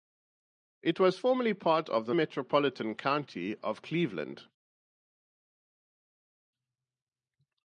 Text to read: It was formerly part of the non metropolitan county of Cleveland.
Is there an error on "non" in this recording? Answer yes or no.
yes